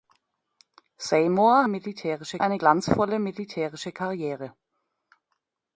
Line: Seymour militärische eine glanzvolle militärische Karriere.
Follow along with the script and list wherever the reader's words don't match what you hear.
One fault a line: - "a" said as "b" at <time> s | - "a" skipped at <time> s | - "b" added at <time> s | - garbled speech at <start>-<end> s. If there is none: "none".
none